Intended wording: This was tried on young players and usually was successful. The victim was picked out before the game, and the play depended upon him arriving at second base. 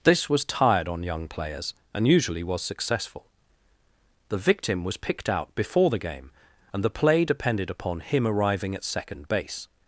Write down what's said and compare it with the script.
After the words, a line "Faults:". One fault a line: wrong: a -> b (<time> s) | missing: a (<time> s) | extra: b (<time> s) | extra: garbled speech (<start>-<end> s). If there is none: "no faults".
This was tired on young players and usually was successful. The victim was picked out before the game, and the play depended upon him arriving at second base.
Faults:
wrong: tried -> tired (0.5 s)